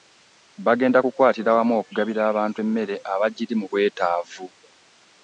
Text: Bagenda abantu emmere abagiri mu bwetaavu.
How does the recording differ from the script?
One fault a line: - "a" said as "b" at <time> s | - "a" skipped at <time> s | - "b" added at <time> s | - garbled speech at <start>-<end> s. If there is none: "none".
- "kukwatira wamu okugabira" added at 1.0 s